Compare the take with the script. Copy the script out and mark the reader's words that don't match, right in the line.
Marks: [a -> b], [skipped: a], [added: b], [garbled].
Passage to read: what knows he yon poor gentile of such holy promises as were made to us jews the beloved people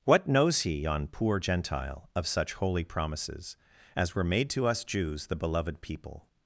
what knows he yon poor gentile of such holy promises as were made to us jews the beloved people